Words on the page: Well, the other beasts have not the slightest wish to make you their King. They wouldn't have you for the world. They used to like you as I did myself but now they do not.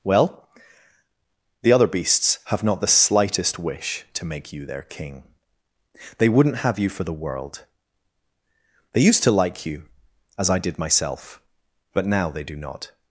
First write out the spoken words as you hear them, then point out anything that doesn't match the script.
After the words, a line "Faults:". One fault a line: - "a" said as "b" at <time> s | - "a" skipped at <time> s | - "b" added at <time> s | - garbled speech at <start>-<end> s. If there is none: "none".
Well, the other beasts have not the slightest wish to make you their King. They wouldn't have you for the world. They used to like you as I did myself but now they do not.
Faults:
none